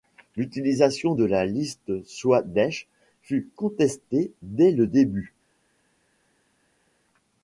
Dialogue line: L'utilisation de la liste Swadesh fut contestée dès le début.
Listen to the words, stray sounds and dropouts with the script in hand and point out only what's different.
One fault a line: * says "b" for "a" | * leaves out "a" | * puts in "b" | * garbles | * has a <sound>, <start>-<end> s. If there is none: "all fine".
all fine